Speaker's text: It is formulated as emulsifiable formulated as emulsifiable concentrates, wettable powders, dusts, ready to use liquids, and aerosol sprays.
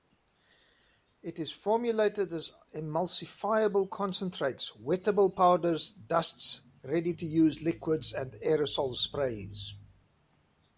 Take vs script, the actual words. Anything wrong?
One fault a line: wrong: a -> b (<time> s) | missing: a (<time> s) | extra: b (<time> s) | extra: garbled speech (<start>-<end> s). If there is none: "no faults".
missing: formulated as emulsifiable (3.9 s)